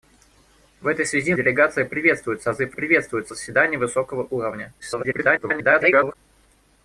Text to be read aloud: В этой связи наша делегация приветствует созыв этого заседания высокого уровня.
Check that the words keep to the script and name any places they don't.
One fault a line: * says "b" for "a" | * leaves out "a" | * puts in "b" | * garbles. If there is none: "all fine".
* leaves out "наша"
* says "приветствует" for "этого"
* garbles